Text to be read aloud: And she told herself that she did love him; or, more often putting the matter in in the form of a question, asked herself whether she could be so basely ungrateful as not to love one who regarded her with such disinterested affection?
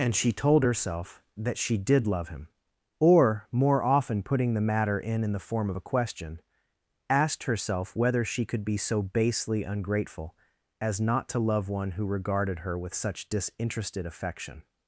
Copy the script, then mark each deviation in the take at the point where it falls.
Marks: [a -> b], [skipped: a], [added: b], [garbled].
And she told herself that she did love him; or, more often putting the matter in in the form of a question, asked herself whether she could be so basely ungrateful as not to love one who regarded her with such disinterested affection?